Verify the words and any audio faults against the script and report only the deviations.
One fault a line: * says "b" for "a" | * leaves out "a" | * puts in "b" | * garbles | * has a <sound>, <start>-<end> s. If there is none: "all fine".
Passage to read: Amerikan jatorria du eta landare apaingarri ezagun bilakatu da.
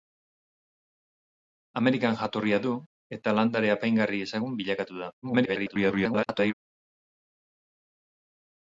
* garbles